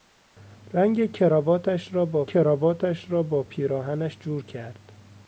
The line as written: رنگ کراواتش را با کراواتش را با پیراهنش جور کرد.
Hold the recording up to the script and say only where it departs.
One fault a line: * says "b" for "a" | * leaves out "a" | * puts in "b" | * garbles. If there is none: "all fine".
all fine